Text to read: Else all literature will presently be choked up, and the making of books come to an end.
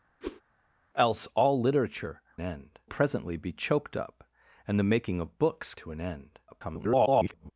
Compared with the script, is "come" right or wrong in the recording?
wrong